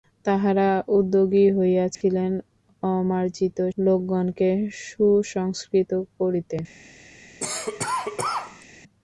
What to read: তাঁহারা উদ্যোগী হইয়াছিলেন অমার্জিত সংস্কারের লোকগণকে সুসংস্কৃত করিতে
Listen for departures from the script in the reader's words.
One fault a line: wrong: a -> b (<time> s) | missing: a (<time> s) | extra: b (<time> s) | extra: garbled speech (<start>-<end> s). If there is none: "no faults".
missing: সংস্কারের (3.6 s)